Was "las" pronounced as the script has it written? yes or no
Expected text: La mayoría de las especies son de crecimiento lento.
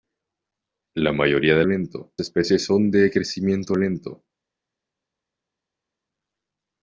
no